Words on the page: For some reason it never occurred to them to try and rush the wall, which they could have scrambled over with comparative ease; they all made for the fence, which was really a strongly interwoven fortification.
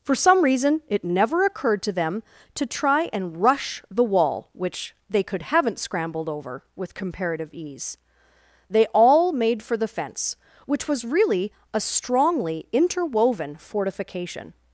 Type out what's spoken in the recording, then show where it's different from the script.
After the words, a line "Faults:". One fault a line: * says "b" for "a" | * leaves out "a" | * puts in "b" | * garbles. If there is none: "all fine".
For some reason it never occurred to them to try and rush the wall, which they could haven't scrambled over with comparative ease; they all made for the fence, which was really a strongly interwoven fortification.
Faults:
* says "haven't" for "have"